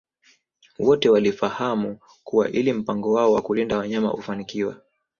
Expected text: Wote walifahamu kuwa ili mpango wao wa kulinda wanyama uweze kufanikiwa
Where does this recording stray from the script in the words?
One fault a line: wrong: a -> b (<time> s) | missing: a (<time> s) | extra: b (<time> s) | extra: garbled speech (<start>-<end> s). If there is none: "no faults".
missing: uweze (4.1 s)